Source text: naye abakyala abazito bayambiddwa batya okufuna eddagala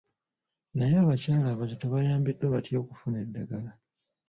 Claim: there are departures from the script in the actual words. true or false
false